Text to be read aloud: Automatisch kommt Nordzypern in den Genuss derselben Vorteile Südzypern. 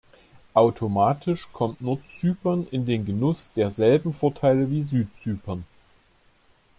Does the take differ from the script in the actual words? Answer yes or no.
yes